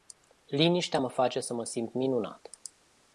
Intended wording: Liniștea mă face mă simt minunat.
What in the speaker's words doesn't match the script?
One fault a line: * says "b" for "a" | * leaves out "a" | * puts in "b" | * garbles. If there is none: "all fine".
* puts in "să"